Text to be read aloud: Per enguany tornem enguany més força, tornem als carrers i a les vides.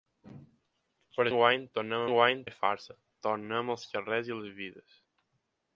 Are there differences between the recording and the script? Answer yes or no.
no